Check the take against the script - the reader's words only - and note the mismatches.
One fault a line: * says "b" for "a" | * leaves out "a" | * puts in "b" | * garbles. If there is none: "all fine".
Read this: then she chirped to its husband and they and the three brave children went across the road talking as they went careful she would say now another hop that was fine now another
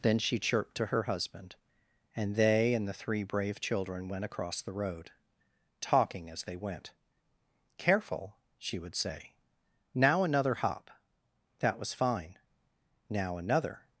* says "her" for "its"